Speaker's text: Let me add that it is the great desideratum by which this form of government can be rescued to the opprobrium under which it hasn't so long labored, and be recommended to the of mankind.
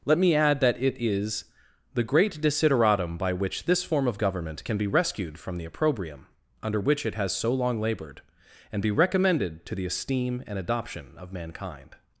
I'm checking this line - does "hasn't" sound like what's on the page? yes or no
no